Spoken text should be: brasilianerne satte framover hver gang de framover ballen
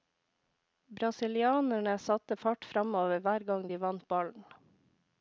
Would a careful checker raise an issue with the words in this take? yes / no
yes